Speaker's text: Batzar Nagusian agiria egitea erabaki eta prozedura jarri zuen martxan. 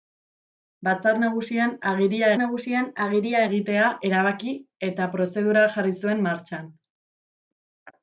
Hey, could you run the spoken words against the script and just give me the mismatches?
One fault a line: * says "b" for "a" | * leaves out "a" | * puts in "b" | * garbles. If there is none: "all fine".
* puts in "Nagusian agiria"